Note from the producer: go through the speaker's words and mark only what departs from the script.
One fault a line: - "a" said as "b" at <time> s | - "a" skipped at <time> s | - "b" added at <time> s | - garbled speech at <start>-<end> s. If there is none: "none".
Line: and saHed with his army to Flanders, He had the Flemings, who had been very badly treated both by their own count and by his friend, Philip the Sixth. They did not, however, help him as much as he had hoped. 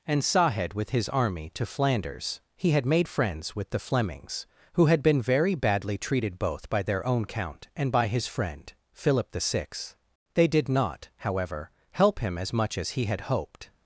- "made friends with" added at 2.9 s